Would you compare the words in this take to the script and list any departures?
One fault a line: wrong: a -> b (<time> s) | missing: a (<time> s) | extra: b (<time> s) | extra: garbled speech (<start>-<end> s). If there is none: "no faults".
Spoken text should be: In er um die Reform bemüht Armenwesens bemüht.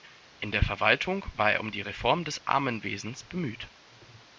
extra: der Verwaltung war (0.5 s)
wrong: bemüht -> des (2.2 s)